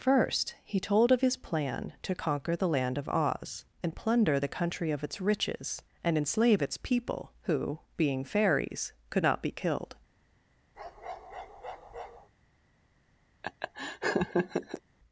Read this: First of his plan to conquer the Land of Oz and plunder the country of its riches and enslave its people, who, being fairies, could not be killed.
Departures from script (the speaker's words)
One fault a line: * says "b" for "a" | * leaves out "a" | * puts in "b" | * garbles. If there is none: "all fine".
* puts in "he told"